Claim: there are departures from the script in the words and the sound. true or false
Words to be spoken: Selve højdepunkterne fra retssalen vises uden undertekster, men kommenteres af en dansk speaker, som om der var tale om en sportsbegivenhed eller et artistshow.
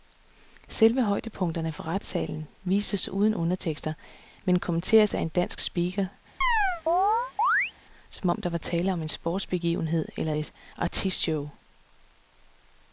true